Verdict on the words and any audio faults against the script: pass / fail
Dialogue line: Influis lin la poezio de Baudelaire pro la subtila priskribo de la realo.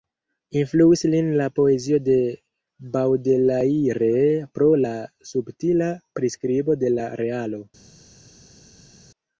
pass